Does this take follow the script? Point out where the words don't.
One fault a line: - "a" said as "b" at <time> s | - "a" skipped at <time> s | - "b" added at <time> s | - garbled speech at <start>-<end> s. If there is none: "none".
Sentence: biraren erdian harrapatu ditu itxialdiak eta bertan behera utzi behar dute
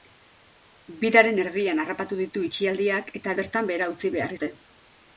none